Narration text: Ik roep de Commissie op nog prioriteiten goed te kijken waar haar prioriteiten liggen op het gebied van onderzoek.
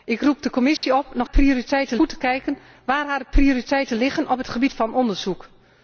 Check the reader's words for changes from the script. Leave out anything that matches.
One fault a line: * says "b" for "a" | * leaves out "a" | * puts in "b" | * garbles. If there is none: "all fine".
all fine